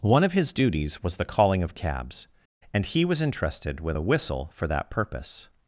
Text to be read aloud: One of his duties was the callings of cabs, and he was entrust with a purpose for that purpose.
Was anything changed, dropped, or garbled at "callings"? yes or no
yes